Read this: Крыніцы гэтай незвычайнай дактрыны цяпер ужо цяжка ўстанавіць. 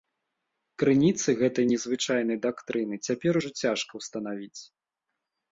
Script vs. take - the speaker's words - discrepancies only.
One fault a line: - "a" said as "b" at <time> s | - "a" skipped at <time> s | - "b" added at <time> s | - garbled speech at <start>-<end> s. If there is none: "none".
none